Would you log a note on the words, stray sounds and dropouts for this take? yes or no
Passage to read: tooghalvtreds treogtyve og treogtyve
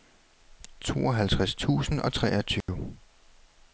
yes